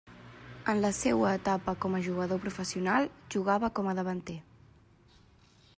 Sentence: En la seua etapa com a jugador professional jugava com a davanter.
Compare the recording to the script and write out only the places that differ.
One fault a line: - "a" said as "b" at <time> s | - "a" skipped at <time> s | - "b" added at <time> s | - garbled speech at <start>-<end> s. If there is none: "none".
none